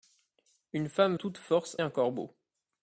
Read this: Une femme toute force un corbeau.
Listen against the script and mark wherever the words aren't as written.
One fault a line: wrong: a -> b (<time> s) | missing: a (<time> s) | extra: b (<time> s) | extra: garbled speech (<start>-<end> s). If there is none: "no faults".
no faults